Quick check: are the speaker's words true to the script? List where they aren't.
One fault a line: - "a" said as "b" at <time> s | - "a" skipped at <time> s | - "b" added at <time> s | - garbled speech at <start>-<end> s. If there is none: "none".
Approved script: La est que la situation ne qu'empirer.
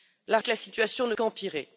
none